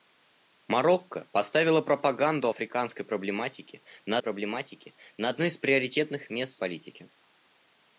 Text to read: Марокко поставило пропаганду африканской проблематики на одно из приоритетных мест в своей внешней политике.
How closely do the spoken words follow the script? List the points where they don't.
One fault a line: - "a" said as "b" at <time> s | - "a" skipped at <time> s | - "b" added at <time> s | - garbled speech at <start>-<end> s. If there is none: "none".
- "проблематики на" added at 4.2 s
- "своей внешней" skipped at 6.6 s